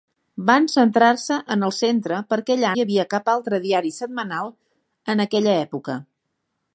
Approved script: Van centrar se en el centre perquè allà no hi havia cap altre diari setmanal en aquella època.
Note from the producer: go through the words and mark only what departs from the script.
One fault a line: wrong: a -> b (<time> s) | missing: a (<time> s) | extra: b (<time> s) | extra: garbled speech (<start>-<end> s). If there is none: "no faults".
missing: no (2.7 s)